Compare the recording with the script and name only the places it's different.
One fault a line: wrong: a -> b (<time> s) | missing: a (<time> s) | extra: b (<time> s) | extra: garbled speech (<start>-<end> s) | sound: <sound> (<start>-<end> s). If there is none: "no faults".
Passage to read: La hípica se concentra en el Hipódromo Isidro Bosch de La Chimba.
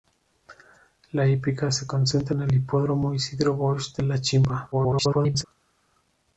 extra: garbled speech (4.7-5.4 s)